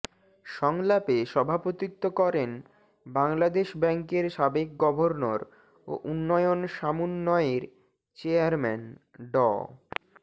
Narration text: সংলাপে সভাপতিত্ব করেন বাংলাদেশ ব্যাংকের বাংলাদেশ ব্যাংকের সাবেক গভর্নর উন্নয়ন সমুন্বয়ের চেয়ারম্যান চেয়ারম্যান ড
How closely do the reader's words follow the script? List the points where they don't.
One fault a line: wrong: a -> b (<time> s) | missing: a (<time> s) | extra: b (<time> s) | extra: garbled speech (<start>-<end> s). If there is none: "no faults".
missing: বাংলাদেশ ব্যাংকের (4.2 s)
extra: ও (5.9 s)
missing: চেয়ারম্যান (8.8 s)